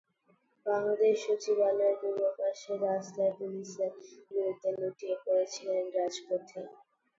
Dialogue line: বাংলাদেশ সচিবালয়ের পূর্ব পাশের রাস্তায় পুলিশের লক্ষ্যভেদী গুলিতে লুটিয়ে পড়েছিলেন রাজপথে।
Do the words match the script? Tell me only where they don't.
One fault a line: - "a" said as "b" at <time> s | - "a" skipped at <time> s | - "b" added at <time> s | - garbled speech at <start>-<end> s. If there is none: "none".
- "লক্ষ্যভেদী" skipped at 3.9 s